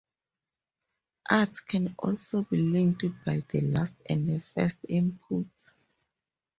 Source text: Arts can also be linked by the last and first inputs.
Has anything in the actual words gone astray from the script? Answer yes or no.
no